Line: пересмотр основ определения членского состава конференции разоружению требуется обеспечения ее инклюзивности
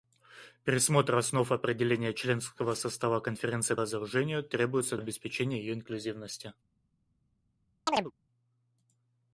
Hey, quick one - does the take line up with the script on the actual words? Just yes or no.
yes